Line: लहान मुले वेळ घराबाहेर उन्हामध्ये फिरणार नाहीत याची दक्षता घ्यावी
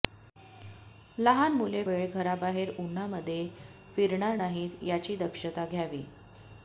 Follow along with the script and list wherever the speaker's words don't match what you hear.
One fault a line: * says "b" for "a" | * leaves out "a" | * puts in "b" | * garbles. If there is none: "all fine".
all fine